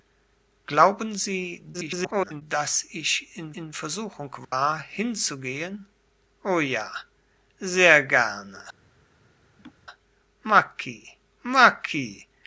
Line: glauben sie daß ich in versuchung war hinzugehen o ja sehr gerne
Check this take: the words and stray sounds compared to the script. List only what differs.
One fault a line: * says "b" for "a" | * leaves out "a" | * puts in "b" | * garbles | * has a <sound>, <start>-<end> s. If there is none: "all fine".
* garbles
* puts in "in"
* has a dropout, 4.4-4.5 s
* has a laugh, 9.6-9.7 s